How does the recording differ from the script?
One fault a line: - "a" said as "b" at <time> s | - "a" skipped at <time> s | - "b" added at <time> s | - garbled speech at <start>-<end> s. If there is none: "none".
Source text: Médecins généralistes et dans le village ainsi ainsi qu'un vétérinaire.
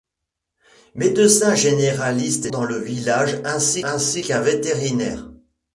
none